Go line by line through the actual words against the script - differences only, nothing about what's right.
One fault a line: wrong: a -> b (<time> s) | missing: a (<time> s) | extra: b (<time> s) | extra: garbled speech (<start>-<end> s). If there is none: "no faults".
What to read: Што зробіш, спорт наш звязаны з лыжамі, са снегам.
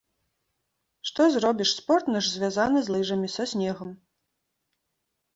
no faults